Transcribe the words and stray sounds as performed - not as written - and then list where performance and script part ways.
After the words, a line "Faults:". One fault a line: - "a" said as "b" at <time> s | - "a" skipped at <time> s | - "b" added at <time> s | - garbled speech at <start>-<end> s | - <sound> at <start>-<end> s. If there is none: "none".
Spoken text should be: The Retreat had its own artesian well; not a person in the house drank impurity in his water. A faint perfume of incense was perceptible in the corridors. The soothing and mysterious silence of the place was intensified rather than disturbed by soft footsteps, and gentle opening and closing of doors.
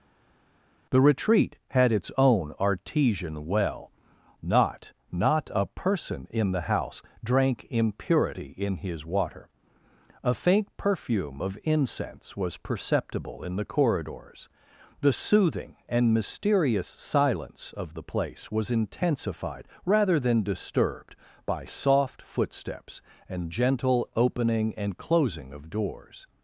The Retreat had its own artesian well; not not a person in the house drank impurity in his water. A faint perfume of incense was perceptible in the corridors. The soothing and mysterious silence of the place was intensified rather than disturbed by soft footsteps, and gentle opening and closing of doors.
Faults:
- "not" added at 5.1 s